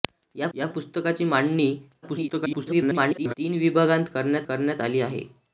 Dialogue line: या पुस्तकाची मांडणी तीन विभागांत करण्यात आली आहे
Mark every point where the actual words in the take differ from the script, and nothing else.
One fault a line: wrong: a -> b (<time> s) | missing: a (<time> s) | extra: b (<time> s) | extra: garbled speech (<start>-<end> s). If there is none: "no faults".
extra: या (0.5 s)
extra: garbled speech (2.0-3.3 s)
extra: करण्यात (4.5 s)